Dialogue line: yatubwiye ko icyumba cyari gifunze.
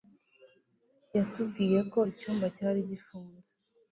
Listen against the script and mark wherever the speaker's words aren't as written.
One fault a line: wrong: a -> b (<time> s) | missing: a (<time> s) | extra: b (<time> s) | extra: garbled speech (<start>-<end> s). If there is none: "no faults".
no faults